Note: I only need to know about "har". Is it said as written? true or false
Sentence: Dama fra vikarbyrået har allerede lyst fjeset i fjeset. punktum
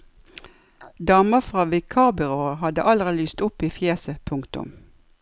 false